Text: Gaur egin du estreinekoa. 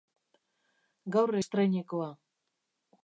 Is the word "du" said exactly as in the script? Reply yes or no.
no